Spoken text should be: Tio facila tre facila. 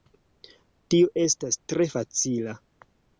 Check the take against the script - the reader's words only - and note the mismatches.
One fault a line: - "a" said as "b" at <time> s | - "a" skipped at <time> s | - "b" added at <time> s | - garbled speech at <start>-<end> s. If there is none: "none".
- "facila" said as "estas" at 1.2 s